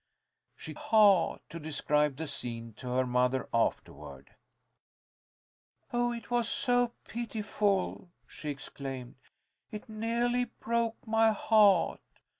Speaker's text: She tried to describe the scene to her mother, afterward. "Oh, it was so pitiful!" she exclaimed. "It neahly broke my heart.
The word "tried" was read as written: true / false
false